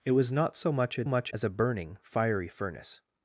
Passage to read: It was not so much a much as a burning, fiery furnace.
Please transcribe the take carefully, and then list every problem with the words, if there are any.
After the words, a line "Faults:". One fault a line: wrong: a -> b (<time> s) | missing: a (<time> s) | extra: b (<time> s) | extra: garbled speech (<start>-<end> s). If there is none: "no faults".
It was not so much a much as a burning, fiery furnace.
Faults:
no faults